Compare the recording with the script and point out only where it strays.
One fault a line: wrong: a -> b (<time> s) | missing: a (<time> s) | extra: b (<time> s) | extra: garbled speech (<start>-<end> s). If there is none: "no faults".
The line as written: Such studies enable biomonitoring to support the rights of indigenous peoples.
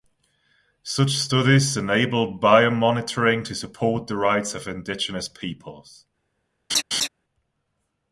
no faults